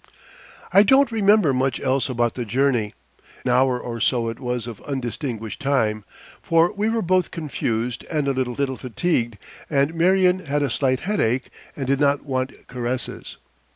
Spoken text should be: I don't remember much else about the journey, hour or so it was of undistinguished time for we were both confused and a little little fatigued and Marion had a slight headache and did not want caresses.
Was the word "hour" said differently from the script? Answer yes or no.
no